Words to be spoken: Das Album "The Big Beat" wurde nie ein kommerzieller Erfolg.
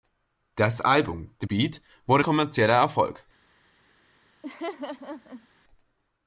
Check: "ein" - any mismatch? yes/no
yes